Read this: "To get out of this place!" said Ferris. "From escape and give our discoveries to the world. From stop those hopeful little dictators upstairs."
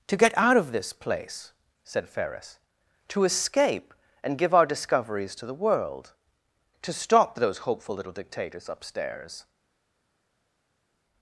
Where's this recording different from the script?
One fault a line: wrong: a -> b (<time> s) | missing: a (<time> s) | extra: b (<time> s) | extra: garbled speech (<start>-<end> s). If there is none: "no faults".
wrong: From -> To (3.1 s)
wrong: From -> To (6.8 s)